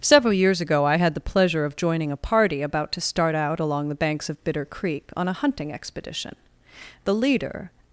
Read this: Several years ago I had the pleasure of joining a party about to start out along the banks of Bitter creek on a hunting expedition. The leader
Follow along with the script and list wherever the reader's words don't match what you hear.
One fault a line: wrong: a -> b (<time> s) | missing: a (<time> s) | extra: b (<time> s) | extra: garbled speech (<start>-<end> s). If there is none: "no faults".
no faults